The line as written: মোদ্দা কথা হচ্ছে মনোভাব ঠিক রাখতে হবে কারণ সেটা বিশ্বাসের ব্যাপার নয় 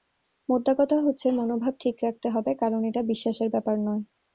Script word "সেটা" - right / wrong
wrong